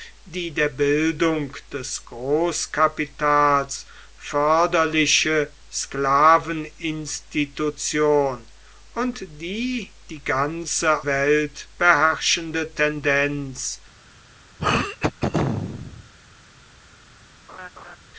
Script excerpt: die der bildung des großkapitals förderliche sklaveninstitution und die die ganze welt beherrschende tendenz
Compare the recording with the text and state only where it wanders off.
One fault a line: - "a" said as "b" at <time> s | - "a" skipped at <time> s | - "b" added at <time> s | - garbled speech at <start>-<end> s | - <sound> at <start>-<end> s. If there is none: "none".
- throat clearing at 14.6-16.1 s
- laugh at 17.5-18.0 s